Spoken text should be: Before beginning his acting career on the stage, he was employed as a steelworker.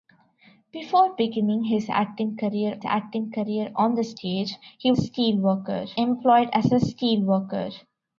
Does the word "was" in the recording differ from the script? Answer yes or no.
yes